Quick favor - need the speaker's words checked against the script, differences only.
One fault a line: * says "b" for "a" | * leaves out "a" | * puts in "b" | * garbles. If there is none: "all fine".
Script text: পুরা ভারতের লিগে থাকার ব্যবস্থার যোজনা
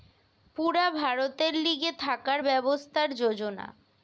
all fine